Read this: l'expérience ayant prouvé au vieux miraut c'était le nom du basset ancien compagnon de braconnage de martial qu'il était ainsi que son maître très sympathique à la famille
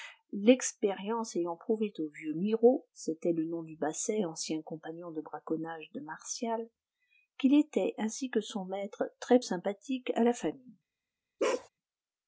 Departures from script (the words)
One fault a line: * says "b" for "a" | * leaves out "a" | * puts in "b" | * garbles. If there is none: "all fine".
all fine